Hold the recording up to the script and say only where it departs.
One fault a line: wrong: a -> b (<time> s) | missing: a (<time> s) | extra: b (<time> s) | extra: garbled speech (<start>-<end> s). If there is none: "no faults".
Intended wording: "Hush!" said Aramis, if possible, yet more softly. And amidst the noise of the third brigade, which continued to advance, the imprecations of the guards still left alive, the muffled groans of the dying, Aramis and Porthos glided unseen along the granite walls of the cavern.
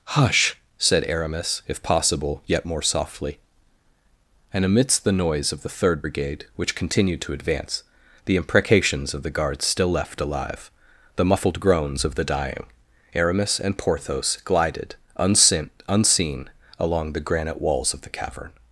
extra: unseen (15.9 s)